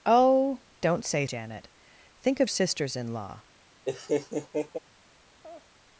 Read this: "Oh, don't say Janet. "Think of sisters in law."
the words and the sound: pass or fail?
fail